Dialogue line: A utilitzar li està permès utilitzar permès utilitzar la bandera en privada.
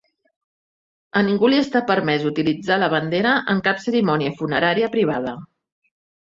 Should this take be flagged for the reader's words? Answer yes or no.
yes